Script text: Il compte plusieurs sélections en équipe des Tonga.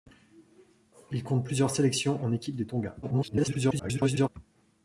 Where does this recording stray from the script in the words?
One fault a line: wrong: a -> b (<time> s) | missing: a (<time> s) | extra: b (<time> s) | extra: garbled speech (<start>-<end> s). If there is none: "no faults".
extra: garbled speech (3.0-4.3 s)